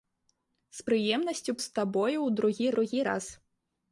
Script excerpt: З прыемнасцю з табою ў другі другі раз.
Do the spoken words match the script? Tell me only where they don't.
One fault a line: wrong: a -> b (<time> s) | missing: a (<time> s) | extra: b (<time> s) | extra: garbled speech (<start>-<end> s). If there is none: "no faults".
no faults